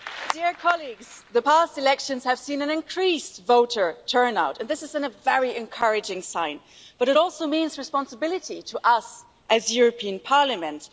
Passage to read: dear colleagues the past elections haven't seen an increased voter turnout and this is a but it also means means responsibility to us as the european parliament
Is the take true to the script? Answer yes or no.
no